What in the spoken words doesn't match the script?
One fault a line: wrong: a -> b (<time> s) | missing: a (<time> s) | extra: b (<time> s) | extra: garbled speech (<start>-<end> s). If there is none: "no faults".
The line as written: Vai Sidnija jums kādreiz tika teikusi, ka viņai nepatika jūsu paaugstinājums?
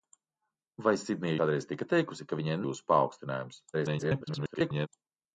missing: jums (1.4 s)
missing: nepatika (2.6 s)
extra: garbled speech (3.7-4.9 s)